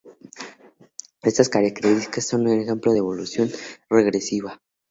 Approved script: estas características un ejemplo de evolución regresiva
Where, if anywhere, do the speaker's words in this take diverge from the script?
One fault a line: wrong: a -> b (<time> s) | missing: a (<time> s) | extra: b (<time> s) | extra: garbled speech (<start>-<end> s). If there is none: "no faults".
extra: son (2.3 s)